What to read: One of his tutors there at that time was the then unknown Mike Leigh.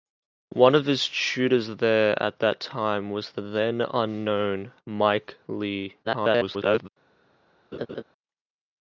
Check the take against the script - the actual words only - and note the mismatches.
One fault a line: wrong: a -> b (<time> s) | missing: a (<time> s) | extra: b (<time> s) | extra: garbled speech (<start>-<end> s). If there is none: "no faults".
extra: garbled speech (6.0-6.9 s)